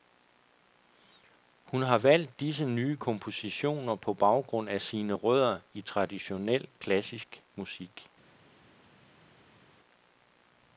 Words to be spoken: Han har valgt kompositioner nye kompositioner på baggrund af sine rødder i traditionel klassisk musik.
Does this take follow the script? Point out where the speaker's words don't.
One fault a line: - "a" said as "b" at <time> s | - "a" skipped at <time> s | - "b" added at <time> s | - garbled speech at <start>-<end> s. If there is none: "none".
- "Han" said as "Hun" at 1.6 s
- "kompositioner" said as "disse" at 2.4 s